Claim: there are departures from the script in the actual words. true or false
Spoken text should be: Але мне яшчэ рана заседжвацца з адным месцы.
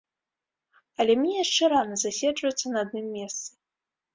true